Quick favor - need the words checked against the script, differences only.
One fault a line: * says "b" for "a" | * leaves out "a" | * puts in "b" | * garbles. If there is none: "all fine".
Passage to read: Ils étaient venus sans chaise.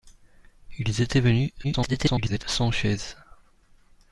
* garbles